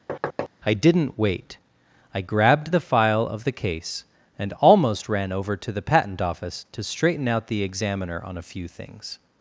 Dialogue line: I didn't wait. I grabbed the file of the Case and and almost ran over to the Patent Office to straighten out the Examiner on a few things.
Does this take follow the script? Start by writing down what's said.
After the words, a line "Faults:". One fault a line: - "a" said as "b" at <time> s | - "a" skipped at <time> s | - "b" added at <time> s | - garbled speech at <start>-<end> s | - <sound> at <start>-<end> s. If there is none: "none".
I didn't wait. I grabbed the file of the Case and almost ran over to the Patent Office to straighten out the Examiner on a few things.
Faults:
- thud at 0.1-0.5 s
- "and" skipped at 4.5 s